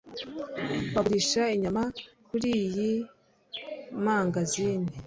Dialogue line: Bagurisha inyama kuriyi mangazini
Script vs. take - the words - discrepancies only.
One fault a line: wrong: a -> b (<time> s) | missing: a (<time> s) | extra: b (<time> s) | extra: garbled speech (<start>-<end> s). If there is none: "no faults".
no faults